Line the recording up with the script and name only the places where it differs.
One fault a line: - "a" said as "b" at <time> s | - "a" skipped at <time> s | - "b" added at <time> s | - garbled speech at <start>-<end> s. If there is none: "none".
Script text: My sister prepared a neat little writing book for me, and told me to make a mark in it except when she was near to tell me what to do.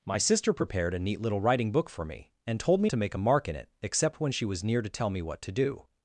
none